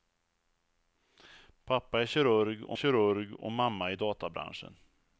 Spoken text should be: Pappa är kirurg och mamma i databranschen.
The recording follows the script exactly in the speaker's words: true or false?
false